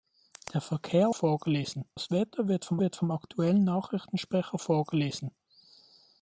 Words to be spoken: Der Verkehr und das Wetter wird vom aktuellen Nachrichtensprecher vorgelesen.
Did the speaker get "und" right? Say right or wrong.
wrong